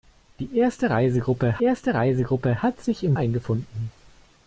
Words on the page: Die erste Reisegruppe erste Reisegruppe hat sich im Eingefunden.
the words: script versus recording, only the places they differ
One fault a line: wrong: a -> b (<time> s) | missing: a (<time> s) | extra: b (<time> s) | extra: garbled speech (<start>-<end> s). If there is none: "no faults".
no faults